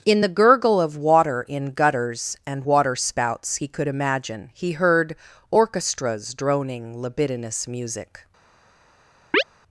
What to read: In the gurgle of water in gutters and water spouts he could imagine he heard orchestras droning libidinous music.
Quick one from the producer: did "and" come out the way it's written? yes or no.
yes